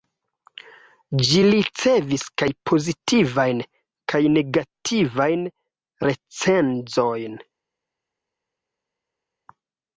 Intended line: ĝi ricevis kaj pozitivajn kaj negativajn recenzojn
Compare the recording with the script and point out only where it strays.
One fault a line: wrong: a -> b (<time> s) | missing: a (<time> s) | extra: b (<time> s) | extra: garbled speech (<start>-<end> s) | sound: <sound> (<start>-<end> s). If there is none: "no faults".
no faults